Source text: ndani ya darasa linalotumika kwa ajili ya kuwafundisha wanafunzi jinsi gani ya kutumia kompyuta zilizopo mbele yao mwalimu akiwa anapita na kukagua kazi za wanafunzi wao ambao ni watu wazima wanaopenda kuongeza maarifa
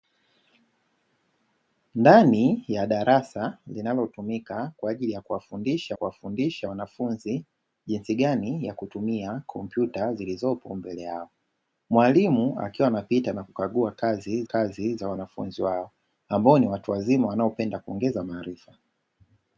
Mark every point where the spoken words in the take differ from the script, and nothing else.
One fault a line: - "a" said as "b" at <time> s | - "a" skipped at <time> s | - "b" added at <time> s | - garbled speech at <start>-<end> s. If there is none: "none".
- "kuwafundisha" added at 5.9 s
- "kazi" added at 14.4 s